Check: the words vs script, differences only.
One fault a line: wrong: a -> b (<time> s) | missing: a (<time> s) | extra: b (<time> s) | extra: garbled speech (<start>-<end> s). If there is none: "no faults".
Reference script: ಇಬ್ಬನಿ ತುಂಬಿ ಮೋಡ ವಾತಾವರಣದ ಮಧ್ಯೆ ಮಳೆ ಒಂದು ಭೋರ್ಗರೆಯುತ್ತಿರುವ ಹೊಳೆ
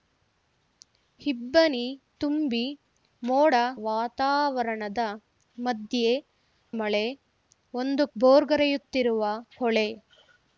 no faults